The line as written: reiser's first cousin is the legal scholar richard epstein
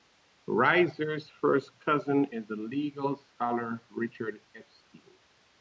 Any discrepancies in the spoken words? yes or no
no